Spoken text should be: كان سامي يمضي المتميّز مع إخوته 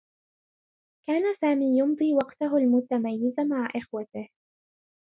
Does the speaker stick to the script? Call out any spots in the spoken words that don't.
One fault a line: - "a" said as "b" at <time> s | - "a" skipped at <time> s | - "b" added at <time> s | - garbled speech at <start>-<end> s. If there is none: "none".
- "وقته" added at 2.1 s